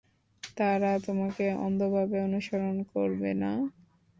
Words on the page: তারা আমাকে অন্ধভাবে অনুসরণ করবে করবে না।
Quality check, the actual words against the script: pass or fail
fail